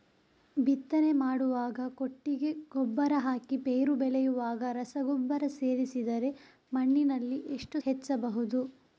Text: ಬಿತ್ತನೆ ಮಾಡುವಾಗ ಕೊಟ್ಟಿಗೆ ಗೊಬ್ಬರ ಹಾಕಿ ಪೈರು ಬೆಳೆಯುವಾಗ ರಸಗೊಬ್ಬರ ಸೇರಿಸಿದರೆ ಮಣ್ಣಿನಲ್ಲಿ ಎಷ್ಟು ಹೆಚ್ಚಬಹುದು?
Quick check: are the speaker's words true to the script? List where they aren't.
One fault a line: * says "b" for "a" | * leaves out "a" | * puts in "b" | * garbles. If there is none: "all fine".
all fine